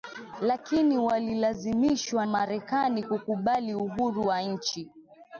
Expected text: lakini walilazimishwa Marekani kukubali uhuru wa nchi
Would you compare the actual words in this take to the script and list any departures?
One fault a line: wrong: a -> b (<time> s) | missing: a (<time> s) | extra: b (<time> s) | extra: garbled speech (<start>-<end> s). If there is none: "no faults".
no faults